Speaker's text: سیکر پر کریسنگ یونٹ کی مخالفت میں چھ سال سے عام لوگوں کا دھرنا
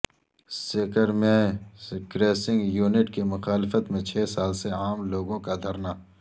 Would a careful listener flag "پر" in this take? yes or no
yes